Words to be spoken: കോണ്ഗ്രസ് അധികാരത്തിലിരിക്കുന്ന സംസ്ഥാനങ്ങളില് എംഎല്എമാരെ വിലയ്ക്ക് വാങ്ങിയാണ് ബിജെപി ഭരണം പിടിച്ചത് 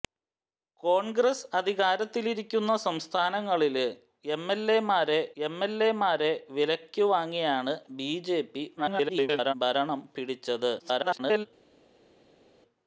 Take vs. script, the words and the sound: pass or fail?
fail